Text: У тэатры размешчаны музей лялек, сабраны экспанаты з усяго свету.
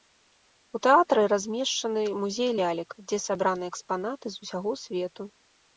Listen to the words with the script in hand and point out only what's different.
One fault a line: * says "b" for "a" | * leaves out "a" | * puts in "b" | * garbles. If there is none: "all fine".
* puts in "дзе"